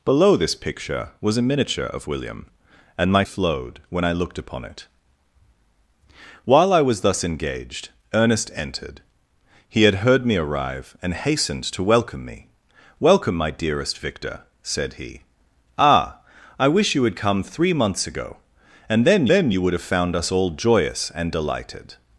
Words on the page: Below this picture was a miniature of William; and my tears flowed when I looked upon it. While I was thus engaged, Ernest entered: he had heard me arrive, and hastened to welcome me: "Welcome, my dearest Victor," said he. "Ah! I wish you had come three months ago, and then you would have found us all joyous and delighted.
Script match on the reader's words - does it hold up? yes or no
no